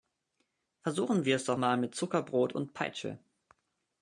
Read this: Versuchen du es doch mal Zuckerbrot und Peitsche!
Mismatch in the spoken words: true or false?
true